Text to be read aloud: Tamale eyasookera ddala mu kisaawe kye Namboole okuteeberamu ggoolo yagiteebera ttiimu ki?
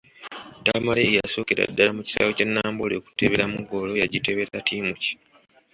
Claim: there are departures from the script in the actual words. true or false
false